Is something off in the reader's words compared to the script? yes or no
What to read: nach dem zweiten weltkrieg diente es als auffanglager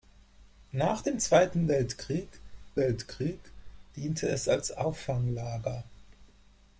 yes